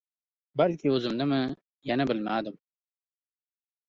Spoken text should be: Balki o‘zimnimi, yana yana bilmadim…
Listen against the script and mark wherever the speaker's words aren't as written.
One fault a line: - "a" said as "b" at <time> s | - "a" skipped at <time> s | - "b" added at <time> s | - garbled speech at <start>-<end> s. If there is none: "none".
- "yana" skipped at 2.1 s